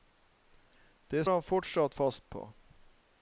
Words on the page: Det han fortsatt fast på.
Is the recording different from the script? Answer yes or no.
no